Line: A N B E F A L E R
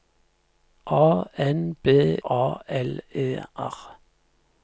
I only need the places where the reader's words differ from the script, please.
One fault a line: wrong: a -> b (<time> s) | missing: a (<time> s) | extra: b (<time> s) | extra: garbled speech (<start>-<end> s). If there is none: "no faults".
missing: E F (1.9 s)